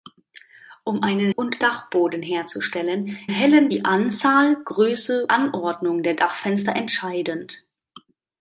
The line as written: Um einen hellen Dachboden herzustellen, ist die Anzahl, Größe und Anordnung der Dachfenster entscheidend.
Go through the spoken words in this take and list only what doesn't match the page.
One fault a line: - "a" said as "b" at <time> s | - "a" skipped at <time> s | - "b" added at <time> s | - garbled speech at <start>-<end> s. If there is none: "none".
- "hellen" said as "und" at 1.3 s
- "ist" said as "hellen" at 3.3 s
- "und" skipped at 5.3 s